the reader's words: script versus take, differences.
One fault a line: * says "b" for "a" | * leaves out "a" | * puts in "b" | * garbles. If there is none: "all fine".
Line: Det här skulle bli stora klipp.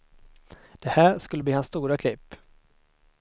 * puts in "hans"